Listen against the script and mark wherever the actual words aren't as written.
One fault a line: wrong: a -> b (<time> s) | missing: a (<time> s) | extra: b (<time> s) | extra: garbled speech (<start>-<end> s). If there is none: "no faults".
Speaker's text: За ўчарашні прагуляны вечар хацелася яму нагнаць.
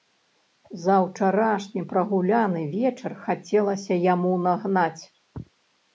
no faults